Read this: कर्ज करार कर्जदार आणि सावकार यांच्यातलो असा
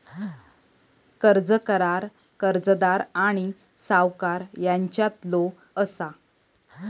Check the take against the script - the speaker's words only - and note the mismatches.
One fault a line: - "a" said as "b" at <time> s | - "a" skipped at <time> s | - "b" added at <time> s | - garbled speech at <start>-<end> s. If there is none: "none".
none